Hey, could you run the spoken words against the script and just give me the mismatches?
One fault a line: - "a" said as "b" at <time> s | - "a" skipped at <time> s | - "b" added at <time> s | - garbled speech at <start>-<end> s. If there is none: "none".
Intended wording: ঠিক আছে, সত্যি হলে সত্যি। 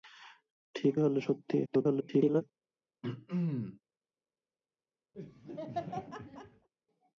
- "আছে সত্যি" skipped at 1.0 s
- garbled speech at 1.7-2.4 s